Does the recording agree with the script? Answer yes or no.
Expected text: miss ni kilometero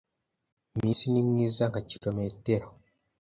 no